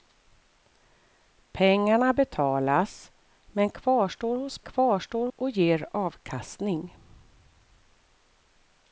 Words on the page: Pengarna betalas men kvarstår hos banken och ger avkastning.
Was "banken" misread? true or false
true